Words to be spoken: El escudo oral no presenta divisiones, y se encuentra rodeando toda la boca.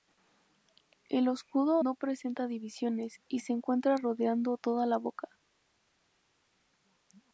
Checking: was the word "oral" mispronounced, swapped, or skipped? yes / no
yes